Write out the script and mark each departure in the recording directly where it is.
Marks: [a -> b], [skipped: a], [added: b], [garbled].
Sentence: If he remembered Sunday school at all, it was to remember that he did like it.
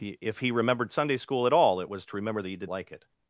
If he remembered Sunday school at all, it was to remember that he did like it.